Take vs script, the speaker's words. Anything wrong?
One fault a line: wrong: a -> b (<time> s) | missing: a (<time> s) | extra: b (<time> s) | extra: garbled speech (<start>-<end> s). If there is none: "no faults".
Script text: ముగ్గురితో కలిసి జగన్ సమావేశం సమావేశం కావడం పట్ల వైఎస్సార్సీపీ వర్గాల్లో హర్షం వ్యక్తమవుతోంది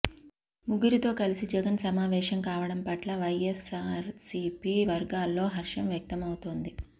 missing: సమావేశం (2.4 s)